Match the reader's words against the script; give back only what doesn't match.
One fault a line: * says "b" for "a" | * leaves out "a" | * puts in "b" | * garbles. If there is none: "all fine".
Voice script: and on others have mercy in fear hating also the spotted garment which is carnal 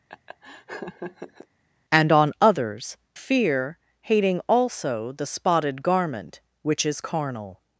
* leaves out "have mercy in"